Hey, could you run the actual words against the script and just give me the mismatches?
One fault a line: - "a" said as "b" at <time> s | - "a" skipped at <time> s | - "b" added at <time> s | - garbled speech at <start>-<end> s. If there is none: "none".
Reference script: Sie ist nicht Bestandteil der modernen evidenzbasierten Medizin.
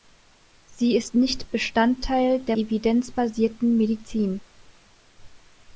- "modernen" skipped at 2.6 s